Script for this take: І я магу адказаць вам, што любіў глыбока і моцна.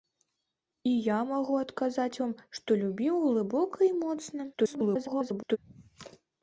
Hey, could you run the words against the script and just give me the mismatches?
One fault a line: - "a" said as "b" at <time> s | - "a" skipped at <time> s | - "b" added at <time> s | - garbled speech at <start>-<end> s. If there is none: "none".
- garbled speech at 4.5-5.6 s